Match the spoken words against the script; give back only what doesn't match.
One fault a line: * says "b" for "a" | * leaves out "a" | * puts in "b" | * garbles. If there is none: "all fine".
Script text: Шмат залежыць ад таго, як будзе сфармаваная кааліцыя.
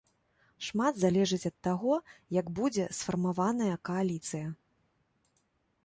all fine